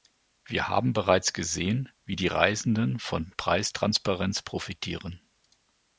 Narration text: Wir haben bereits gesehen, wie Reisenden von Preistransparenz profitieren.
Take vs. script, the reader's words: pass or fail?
fail